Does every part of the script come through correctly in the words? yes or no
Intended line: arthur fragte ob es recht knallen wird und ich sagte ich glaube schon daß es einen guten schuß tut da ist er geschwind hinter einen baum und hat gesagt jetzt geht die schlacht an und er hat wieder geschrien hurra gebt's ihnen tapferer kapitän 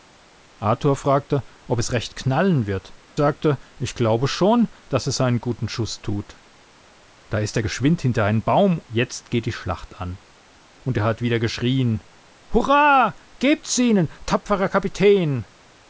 no